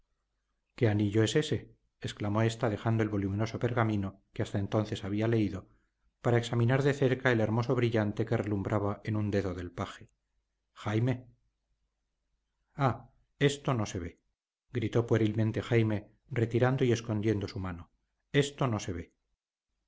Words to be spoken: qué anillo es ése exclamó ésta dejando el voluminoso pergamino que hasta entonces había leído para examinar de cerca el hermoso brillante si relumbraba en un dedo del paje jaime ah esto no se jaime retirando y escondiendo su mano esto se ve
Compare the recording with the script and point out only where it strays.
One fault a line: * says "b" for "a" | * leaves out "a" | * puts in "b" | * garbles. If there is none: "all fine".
* says "que" for "si"
* puts in "ve gritó puerilmente"
* puts in "no"